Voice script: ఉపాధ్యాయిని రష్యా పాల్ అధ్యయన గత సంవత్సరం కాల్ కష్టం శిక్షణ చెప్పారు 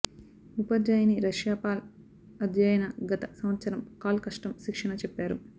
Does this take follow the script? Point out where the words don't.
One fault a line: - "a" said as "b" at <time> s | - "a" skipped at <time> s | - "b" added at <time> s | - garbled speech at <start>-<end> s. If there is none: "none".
none